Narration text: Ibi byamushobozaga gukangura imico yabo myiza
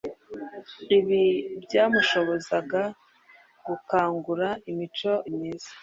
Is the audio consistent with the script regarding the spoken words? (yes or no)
no